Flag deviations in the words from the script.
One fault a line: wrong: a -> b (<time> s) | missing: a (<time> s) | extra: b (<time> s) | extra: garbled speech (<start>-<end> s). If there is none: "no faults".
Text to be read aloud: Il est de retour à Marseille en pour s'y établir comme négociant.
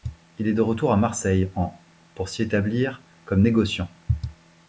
no faults